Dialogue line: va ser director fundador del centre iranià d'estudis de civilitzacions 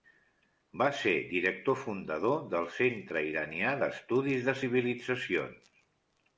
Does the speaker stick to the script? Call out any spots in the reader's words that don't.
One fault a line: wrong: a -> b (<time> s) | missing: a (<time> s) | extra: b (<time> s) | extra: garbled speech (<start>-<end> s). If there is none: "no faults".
no faults